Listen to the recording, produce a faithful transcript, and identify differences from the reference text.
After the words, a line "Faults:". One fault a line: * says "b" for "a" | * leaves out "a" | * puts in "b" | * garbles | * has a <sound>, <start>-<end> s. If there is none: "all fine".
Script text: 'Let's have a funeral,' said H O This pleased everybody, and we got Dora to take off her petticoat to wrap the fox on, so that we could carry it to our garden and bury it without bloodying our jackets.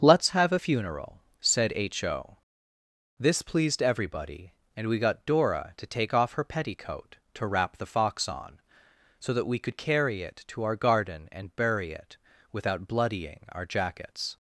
'Let's have a funeral,' said H O This pleased everybody, and we got Dora to take off her petticoat to wrap the fox on, so that we could carry it to our garden and bury it without bloodying our jackets.
Faults:
all fine